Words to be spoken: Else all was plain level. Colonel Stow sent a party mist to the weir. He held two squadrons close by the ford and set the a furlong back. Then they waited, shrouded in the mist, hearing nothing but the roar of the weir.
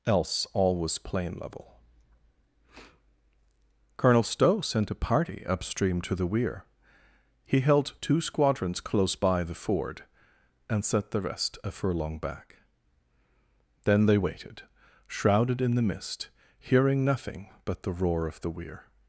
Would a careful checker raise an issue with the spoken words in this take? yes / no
yes